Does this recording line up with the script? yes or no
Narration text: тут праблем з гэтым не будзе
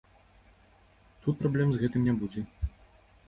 yes